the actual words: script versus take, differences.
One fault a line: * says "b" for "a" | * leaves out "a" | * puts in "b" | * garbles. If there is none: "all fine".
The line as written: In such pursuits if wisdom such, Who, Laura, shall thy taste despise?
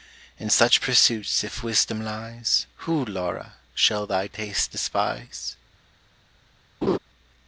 * says "lies" for "such"